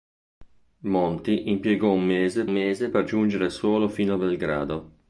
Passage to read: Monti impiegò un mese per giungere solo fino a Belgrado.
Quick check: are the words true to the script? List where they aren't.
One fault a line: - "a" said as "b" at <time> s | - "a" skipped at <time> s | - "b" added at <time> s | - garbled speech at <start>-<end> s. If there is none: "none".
- "mese" added at 2.5 s